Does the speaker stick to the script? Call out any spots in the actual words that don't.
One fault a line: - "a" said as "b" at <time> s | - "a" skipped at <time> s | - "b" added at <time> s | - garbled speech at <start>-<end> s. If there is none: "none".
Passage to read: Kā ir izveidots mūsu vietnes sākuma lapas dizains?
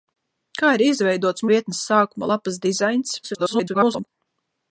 - "mūsu" skipped at 1.4 s
- garbled speech at 3.2-4.1 s